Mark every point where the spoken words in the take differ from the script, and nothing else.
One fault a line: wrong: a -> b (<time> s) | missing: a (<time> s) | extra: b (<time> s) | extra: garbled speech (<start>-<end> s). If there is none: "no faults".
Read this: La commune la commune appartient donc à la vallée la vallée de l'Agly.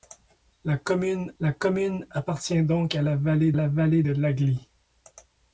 no faults